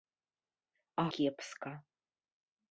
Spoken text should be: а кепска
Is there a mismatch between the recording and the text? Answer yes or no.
no